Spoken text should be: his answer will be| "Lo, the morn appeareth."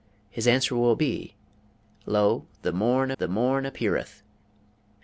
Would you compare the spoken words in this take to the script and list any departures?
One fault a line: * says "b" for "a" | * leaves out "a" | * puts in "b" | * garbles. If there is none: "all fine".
* puts in "the morn"